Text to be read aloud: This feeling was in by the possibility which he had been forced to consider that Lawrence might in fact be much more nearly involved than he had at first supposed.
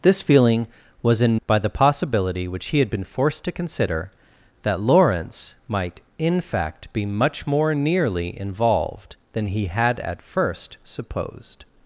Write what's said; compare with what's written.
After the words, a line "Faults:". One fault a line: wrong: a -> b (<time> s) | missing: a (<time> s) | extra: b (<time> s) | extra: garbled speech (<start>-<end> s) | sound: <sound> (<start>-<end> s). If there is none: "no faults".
This feeling was in by the possibility which he had been forced to consider that Lawrence might in fact be much more nearly involved than he had at first supposed.
Faults:
no faults